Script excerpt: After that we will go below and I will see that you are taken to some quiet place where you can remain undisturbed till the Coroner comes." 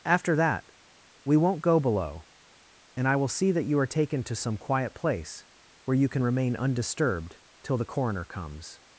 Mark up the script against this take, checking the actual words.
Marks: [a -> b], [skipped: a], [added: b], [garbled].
After that we [will -> won't] go below and I will see that you are taken to some quiet place where you can remain undisturbed till the Coroner comes."